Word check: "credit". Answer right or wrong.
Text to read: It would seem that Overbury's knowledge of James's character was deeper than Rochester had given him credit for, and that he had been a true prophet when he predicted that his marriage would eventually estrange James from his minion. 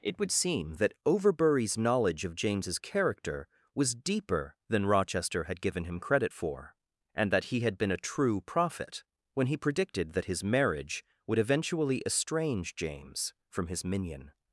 right